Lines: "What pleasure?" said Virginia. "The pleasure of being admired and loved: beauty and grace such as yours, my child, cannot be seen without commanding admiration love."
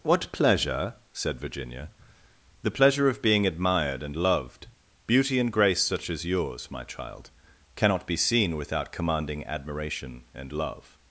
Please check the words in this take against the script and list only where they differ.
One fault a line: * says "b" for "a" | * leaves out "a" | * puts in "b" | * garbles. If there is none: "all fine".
* puts in "and"